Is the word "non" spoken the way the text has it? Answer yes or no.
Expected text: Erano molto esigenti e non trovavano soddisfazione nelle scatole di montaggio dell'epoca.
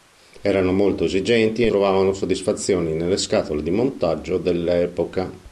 no